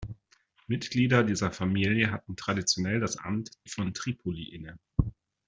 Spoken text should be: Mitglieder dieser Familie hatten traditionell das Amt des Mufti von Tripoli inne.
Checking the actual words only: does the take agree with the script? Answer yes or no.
no